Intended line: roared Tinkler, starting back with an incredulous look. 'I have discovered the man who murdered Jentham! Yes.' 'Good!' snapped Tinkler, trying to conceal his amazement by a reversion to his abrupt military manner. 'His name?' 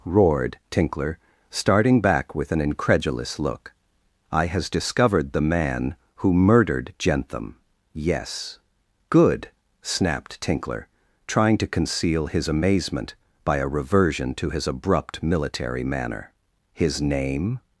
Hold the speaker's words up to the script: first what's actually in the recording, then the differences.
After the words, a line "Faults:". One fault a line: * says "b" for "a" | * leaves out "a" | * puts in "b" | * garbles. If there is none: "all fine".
roared Tinkler, starting back with an incredulous look. 'I has discovered the man who murdered Jentham! Yes.' 'Good!' snapped Tinkler, trying to conceal his amazement by a reversion to his abrupt military manner. 'His name?'
Faults:
* says "has" for "have"